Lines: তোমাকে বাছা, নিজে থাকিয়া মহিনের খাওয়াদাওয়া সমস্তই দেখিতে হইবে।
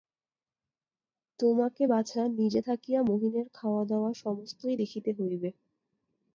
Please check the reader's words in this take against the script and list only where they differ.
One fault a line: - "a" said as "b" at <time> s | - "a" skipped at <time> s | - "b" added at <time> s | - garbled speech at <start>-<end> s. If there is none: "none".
none